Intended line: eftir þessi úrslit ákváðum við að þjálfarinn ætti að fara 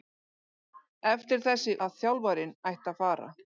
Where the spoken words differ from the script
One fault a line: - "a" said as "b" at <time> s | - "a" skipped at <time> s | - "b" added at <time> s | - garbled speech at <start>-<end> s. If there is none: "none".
- "úrslit ákváðum við" skipped at 1.8 s